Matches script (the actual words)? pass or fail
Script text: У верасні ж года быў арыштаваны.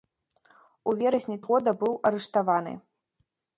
pass